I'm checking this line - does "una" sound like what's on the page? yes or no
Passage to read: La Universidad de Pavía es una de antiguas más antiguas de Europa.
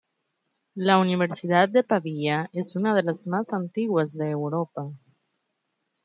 yes